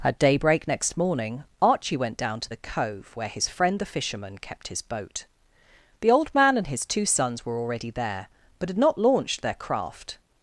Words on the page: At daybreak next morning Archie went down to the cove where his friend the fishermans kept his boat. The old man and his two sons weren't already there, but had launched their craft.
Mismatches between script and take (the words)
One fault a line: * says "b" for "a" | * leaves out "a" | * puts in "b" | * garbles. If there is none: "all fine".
* says "fisherman" for "fishermans"
* says "were" for "weren't"
* puts in "not"